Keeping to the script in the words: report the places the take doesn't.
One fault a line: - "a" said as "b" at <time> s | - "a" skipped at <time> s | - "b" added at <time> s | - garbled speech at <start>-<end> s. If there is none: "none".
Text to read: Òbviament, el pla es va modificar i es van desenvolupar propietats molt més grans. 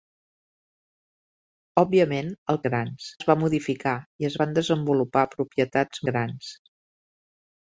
- "pla" said as "grans" at 2.7 s
- "molt més" skipped at 6.0 s